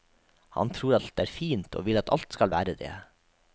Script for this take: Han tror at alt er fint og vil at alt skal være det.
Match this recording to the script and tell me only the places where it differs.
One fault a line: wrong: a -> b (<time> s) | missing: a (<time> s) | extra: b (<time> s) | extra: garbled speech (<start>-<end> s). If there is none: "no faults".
missing: at (0.9 s)